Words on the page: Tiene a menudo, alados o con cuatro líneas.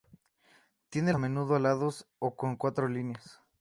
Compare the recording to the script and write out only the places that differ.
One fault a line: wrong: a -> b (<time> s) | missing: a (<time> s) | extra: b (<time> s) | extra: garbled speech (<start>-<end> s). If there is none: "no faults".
no faults